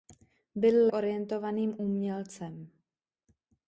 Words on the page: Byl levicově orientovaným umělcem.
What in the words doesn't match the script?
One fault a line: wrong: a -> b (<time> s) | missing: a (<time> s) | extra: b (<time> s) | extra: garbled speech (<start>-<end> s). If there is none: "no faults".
missing: levicově (0.9 s)